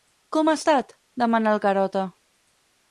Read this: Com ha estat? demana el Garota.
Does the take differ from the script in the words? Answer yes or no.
no